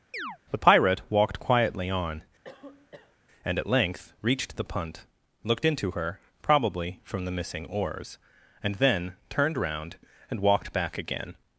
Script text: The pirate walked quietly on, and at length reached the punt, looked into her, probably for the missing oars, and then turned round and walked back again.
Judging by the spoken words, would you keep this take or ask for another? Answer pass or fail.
fail